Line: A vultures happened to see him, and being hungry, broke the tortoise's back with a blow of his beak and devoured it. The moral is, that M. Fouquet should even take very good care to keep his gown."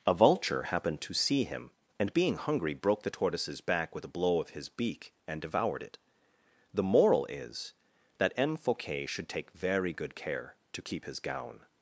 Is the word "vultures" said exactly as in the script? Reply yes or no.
no